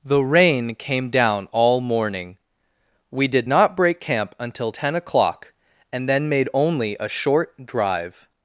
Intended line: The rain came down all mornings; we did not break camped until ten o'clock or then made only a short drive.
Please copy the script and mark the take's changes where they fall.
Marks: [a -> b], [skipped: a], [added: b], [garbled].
The rain came down all [mornings; -> morning] we did not break [camped -> camp] until ten o'clock [or -> and] then made only a short drive.